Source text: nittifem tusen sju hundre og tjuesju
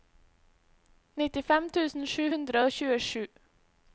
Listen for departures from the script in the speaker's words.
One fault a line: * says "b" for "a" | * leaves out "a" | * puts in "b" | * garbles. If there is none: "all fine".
all fine